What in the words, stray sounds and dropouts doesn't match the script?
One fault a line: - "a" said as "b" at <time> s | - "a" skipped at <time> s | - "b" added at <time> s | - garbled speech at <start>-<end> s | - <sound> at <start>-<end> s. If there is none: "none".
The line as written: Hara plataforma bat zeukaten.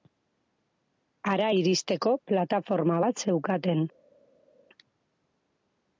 - "iristeko" added at 1.5 s